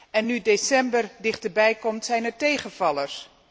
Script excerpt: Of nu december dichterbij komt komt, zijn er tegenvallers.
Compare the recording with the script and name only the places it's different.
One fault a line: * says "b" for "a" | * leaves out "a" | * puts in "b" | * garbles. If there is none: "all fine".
* says "En" for "Of"
* leaves out "komt"